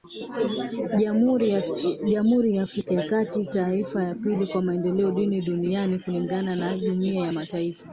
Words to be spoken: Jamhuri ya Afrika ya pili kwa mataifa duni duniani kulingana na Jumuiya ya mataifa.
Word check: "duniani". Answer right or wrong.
right